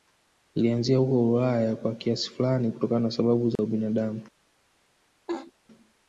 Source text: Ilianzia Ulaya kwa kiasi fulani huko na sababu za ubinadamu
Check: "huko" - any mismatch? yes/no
yes